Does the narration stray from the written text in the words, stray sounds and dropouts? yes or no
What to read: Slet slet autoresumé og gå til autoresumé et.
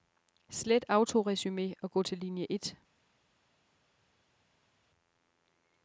yes